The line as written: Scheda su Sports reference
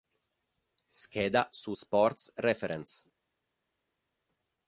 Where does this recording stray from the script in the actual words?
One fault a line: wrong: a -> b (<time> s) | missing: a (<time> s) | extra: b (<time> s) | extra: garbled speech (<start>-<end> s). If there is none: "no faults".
no faults